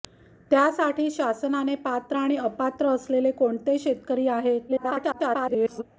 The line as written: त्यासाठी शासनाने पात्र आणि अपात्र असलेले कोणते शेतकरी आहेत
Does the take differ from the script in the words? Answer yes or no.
yes